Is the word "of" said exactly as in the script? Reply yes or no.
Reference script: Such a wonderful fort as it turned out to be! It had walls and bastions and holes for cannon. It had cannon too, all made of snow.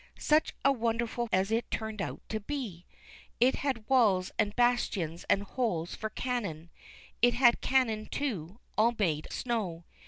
no